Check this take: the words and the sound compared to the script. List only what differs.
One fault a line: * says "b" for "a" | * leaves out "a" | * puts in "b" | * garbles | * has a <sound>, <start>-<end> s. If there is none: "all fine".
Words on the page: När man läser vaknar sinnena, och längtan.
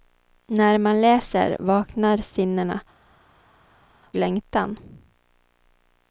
* leaves out "och"